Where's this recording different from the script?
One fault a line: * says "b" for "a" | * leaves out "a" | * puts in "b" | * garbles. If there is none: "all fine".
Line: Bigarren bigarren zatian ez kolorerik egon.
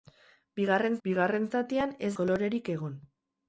all fine